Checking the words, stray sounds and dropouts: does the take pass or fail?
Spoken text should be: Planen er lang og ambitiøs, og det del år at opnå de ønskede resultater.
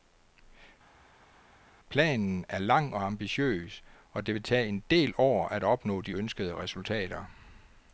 fail